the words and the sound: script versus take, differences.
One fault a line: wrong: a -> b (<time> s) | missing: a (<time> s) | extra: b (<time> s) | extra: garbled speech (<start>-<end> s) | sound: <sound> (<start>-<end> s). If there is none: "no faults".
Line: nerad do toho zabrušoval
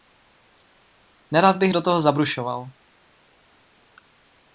extra: bych (1.6 s)